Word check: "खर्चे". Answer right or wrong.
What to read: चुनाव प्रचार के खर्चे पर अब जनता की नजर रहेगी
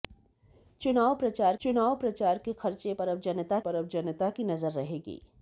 right